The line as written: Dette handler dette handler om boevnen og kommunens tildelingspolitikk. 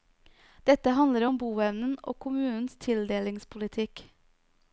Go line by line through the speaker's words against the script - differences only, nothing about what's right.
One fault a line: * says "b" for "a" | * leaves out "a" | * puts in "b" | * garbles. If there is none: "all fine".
* leaves out "dette handler"